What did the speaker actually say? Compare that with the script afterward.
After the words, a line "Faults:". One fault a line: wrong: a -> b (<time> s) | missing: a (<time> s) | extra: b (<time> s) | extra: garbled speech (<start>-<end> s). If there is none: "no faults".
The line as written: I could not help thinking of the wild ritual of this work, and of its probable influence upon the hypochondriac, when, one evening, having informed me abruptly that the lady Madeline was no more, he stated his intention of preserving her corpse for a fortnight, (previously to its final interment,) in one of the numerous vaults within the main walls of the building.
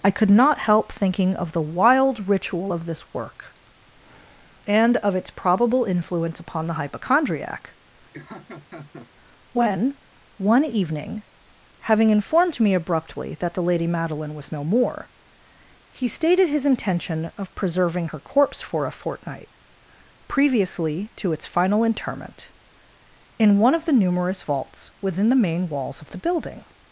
I could not help thinking of the wild ritual of this work, and of its probable influence upon the hypochondriac, when, one evening, having informed me abruptly that the lady Madeline was no more, he stated his intention of preserving her corpse for a fortnight, (previously to its final interment,) in one of the numerous vaults within the main walls of the building.
Faults:
no faults